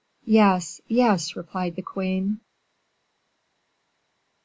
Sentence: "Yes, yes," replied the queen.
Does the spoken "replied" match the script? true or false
true